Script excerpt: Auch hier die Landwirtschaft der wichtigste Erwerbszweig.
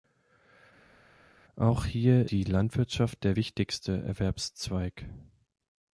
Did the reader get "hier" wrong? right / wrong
right